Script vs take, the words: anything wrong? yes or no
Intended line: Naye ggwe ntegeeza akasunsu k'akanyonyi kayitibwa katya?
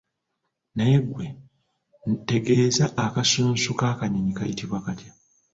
no